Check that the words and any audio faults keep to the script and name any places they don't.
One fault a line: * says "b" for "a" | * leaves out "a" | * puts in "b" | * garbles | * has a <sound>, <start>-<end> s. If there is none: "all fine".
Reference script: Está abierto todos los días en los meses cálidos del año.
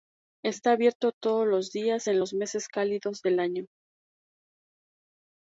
all fine